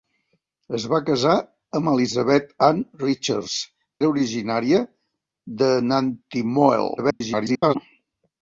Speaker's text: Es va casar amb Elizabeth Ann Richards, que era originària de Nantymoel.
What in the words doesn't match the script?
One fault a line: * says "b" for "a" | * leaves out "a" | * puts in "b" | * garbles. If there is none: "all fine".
* leaves out "que"
* garbles